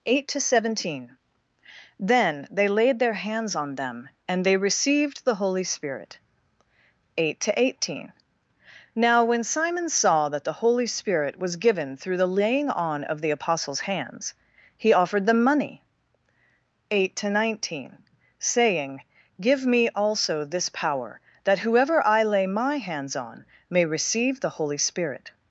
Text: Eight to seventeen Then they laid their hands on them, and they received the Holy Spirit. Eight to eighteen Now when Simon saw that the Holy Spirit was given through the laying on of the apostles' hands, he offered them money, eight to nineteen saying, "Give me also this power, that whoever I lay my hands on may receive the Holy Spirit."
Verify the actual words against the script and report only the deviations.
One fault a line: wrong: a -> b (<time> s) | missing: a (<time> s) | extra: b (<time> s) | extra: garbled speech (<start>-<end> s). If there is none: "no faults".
no faults